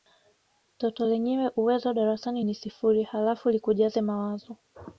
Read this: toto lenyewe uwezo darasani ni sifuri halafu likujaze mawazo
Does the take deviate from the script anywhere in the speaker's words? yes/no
no